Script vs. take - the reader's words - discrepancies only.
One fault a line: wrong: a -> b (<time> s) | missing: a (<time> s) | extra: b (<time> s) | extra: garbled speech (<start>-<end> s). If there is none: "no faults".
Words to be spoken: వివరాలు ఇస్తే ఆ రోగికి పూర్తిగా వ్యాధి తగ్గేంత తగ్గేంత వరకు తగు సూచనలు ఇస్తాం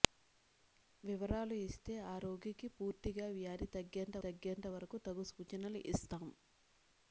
no faults